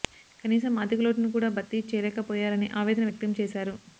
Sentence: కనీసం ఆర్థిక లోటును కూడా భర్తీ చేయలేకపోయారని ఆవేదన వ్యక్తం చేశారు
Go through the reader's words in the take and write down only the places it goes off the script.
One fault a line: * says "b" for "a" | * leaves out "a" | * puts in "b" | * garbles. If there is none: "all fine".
all fine